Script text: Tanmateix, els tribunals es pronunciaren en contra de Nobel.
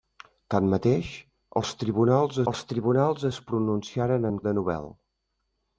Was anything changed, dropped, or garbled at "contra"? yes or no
yes